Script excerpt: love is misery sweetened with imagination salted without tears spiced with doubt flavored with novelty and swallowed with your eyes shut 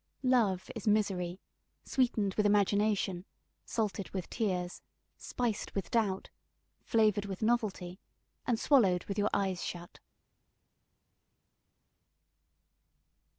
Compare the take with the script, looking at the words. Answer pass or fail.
fail